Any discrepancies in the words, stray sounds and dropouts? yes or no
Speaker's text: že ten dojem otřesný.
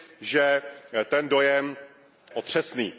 no